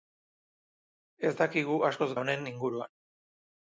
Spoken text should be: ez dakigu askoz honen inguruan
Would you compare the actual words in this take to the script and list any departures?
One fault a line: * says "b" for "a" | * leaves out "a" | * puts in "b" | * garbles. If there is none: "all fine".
all fine